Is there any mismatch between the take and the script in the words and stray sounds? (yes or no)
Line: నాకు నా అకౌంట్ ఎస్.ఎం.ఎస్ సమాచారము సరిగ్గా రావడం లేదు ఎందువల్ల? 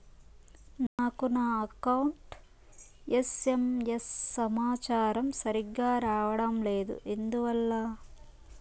yes